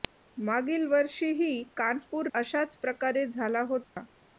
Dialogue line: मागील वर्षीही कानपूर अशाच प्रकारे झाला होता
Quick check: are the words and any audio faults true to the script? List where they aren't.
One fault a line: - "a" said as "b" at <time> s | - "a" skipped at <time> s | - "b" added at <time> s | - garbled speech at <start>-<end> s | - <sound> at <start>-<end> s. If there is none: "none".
- dropout at 3.8-4.0 s